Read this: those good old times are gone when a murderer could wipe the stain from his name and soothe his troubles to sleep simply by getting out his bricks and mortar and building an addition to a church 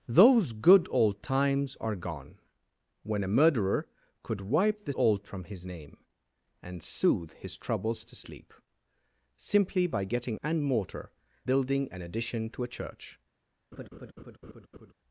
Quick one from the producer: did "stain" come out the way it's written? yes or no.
no